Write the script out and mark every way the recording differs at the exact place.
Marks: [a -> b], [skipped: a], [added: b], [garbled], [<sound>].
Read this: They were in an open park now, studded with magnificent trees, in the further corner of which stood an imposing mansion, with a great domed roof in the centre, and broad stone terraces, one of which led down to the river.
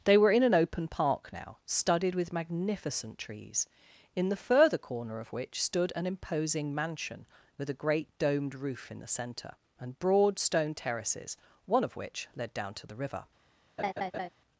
They were in an open park now, studded with magnificent trees, in the further corner of which stood an imposing mansion, with a great domed roof in the centre, and broad stone terraces, one of which led down to the river. [laugh]